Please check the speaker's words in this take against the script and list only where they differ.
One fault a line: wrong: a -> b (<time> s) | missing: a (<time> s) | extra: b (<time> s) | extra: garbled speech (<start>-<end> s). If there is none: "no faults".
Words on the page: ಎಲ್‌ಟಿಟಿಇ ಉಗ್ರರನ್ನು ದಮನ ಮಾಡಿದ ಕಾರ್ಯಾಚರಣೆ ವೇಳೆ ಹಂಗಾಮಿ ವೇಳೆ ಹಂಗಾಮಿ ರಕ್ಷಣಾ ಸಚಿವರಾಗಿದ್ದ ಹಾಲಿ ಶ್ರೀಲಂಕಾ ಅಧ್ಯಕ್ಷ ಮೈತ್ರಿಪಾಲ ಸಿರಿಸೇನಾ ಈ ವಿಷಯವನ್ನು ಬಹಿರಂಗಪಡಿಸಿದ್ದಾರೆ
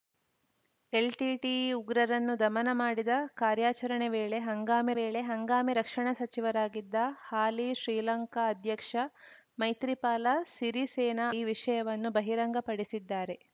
no faults